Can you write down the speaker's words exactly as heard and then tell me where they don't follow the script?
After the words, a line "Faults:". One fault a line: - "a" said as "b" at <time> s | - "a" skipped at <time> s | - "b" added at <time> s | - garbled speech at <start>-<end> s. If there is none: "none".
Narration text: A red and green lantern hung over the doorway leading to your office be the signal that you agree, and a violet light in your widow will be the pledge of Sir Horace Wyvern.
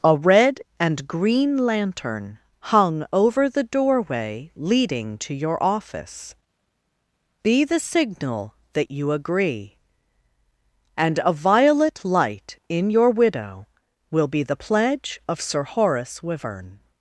A red and green lantern hung over the doorway leading to your office be the signal that you agree, and a violet light in your widow will be the pledge of Sir Horace Wyvern.
Faults:
none